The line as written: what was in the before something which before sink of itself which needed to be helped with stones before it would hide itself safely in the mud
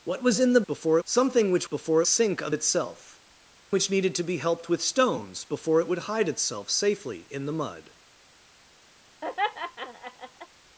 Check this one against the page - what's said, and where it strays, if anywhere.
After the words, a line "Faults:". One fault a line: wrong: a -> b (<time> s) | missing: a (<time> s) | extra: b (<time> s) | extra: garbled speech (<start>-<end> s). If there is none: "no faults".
what was in the before something which before sink of itself which needed to be helped with stones before it would hide itself safely in the mud
Faults:
no faults